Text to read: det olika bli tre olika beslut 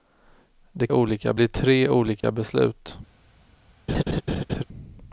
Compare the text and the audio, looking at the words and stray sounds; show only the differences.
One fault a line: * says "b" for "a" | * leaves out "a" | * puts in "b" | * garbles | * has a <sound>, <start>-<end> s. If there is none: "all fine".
* has a dropout, 2.2-2.2 s
* has a laugh, 3.9-4.6 s